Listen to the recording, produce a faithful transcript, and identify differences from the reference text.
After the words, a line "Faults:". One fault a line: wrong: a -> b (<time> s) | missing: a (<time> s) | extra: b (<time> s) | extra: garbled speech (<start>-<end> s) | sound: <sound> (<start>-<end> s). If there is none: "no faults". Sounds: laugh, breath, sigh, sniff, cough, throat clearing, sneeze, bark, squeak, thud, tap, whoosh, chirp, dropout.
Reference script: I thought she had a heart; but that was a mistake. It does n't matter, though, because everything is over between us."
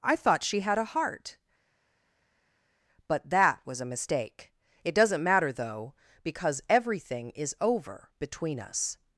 I thought she had a heart; but that was a mistake. It does n't matter, though, because everything is over between us."
Faults:
no faults